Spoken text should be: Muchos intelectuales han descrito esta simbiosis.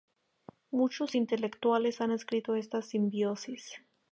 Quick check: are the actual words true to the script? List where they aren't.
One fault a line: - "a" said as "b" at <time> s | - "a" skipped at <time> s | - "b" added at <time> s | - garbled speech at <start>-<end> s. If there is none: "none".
none